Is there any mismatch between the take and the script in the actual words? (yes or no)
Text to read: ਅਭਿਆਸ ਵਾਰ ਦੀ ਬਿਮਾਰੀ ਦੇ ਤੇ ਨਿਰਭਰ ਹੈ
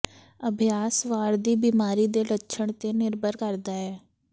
yes